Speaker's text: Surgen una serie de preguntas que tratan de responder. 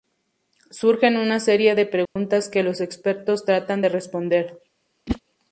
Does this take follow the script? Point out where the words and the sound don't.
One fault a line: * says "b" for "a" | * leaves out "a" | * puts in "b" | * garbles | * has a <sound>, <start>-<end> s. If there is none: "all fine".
* has a dropout, 2.1-2.2 s
* puts in "los expertos"
* has a whoosh, 5.1-5.2 s